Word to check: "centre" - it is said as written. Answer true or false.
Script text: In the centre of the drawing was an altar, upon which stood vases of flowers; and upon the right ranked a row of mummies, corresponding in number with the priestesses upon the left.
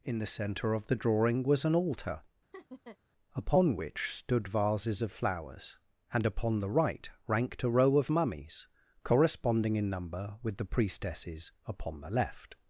true